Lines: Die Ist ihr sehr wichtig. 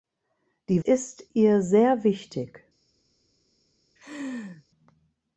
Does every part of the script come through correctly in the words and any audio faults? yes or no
no